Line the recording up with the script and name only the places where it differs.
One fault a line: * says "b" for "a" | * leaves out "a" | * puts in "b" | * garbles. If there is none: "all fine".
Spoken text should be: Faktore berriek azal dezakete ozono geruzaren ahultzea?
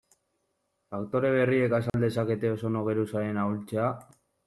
all fine